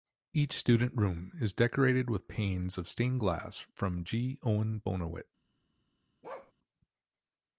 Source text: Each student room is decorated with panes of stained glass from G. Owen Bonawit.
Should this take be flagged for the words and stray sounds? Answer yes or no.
yes